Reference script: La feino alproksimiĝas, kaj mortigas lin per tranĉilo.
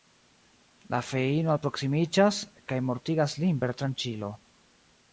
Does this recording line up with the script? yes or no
yes